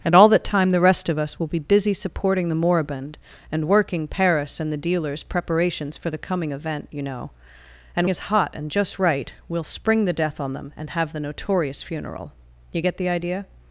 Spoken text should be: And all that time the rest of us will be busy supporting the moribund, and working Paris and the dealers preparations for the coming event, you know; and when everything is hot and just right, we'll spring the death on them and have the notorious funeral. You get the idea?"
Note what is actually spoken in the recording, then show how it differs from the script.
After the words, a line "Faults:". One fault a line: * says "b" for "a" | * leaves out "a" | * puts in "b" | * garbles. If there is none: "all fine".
And all that time the rest of us will be busy supporting the moribund, and working Paris and the dealers preparations for the coming event, you know; and is hot and just right, we'll spring the death on them and have the notorious funeral. You get the idea?"
Faults:
* leaves out "when everything"